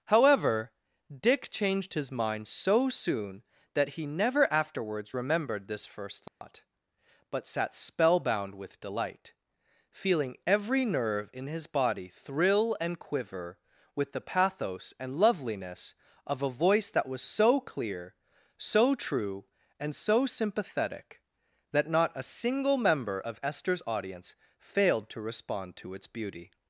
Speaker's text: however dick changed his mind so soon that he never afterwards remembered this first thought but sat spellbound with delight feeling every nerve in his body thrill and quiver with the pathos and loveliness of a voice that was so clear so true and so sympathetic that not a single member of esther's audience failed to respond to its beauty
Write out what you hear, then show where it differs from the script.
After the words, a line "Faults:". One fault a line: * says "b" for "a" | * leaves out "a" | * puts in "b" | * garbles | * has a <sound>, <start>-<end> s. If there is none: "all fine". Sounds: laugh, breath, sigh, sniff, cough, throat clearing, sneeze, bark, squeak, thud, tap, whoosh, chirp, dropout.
however dick changed his mind so soon that he never afterwards remembered this first thought but sat spellbound with delight feeling every nerve in his body thrill and quiver with the pathos and loveliness of a voice that was so clear so true and so sympathetic that not a single member of esther's audience failed to respond to its beauty
Faults:
* has a dropout, 6.3-6.4 s